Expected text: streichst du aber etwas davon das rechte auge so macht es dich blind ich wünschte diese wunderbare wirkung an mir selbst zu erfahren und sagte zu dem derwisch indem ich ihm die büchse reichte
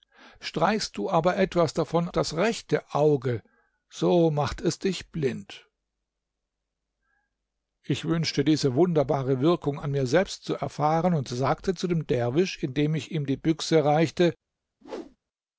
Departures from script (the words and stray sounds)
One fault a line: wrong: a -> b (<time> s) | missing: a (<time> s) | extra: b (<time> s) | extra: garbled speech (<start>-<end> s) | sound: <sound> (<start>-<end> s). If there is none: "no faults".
sound: whoosh (14.8-15.2 s)